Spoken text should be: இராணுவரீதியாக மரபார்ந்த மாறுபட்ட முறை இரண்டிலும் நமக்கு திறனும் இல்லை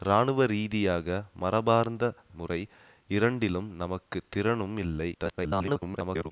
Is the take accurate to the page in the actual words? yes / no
no